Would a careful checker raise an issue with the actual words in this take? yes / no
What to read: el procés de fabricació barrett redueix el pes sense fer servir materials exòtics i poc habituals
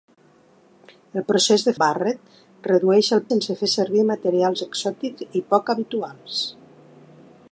yes